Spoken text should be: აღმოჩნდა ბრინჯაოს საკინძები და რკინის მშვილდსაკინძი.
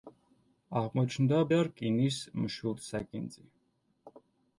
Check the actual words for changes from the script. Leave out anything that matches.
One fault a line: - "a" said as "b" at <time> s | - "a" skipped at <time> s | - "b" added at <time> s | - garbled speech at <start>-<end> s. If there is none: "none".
- "ბრინჯაოს საკინძები" skipped at 1.4 s